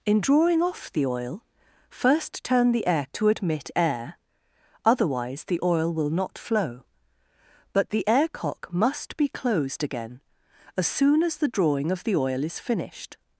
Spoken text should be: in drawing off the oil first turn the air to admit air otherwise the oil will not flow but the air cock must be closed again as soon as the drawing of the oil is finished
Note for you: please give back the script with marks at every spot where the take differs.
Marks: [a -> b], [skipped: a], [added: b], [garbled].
in drawing off the oil first turn the air to admit air otherwise the oil will not flow but the air cock must be closed again as soon as the drawing of the oil is finished